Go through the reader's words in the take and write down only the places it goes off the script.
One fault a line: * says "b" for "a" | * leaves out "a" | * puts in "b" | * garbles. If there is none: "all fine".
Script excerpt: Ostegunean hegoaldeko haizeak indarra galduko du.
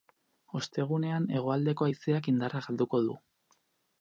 all fine